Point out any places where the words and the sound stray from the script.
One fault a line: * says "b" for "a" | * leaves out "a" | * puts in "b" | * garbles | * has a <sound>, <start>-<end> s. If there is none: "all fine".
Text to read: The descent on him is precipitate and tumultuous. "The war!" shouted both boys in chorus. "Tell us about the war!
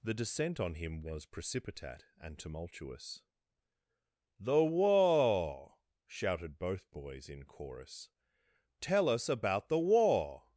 * says "was" for "is"